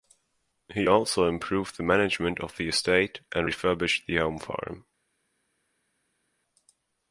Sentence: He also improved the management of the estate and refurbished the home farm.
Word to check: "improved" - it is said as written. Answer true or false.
true